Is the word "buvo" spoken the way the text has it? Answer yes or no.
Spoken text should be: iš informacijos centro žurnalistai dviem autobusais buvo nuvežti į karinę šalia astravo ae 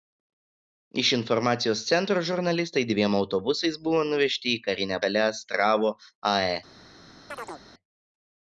yes